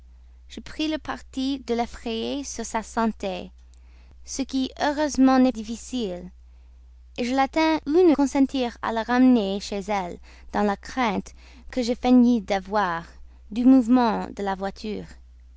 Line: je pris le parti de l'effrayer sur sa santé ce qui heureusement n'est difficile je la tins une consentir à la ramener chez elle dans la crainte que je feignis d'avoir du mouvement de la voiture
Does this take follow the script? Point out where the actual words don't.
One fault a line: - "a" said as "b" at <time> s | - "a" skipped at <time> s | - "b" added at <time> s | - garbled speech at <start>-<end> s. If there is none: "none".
none